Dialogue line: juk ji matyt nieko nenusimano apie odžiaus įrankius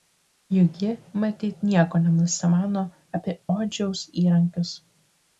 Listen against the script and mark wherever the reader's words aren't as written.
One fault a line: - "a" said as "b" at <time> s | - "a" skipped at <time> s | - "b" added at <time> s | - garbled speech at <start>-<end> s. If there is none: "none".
none